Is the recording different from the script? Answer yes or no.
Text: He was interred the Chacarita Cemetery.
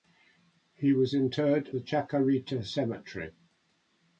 no